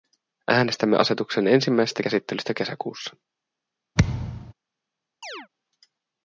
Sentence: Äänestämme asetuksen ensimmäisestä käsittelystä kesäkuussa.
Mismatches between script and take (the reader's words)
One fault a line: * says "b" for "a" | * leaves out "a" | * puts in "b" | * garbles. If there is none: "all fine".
all fine